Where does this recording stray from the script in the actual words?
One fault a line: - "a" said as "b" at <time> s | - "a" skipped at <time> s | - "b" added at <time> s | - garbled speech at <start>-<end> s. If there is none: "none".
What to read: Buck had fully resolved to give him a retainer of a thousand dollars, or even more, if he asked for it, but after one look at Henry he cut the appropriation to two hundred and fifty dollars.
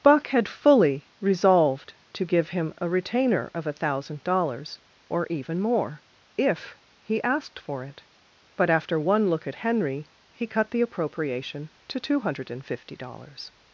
none